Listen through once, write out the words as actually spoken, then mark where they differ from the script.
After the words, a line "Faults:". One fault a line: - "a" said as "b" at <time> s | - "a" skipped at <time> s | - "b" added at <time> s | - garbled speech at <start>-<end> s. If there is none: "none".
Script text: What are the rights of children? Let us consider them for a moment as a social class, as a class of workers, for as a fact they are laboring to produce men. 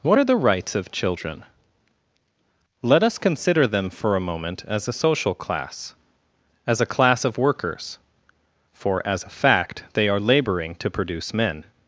What are the rights of children? Let us consider them for a moment as a social class, as a class of workers, for as a fact they are laboring to produce men.
Faults:
none